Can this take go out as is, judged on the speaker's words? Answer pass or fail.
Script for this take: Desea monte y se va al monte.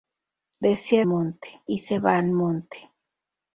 pass